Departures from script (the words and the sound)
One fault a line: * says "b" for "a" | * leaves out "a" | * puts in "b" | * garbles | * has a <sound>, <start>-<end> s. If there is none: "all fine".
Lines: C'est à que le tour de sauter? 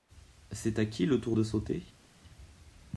* says "qui" for "que"